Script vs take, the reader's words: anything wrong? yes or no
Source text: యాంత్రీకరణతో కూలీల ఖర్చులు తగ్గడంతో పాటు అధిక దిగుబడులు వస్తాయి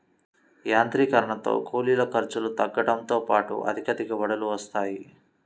no